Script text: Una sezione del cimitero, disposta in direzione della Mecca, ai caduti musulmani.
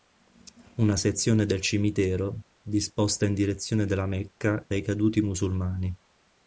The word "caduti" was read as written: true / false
true